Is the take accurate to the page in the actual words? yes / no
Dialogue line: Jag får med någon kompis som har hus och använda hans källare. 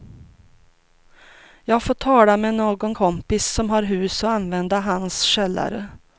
no